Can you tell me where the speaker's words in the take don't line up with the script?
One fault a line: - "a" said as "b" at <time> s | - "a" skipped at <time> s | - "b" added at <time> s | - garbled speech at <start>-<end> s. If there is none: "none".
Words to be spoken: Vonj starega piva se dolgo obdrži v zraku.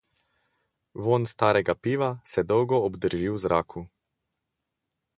none